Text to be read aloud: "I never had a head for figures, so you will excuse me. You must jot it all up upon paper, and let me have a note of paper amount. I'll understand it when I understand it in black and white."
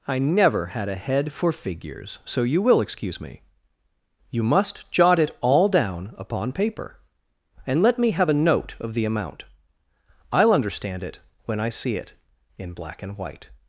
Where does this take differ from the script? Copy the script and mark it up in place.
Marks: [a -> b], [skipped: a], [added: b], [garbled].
"I never had a head for figures, so you will excuse me. You must jot it all [up -> down] upon paper, and let me have a note of [paper -> the] amount. I'll understand it when I [understand -> see] it in black and white."